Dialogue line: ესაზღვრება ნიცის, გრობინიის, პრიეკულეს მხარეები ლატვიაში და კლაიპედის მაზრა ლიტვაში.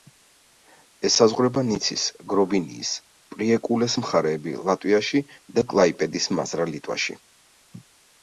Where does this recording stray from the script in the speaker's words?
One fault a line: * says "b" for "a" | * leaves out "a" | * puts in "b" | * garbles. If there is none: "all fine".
all fine